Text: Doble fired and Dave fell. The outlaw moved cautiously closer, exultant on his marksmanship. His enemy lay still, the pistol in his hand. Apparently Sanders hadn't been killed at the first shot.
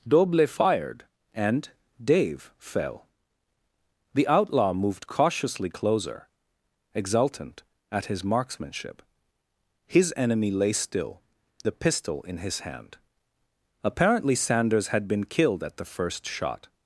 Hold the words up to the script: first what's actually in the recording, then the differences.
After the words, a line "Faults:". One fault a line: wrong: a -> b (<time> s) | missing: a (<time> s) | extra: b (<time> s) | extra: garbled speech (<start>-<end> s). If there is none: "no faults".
Doble fired and Dave fell. The outlaw moved cautiously closer, exultant at his marksmanship. His enemy lay still, the pistol in his hand. Apparently Sanders had been killed at the first shot.
Faults:
wrong: on -> at (7.9 s)
wrong: hadn't -> had (14.9 s)